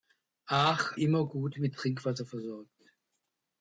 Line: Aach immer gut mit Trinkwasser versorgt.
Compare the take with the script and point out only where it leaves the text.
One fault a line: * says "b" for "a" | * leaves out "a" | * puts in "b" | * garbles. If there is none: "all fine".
all fine